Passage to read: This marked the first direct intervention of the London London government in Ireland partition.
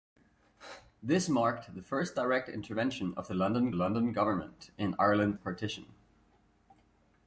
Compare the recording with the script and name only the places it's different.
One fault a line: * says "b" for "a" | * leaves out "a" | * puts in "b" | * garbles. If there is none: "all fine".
all fine